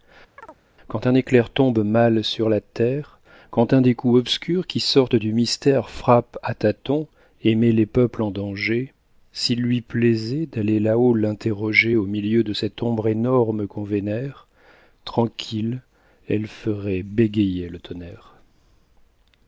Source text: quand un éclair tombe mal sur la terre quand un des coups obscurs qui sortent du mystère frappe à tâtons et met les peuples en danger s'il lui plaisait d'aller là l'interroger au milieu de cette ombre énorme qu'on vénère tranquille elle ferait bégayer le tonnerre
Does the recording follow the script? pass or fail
fail